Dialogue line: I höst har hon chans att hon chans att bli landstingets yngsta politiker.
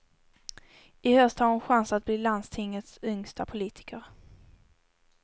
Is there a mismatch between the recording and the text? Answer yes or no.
yes